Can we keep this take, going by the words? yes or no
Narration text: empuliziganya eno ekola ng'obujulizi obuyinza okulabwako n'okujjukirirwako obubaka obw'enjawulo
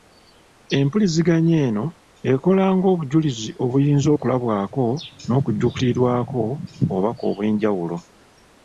yes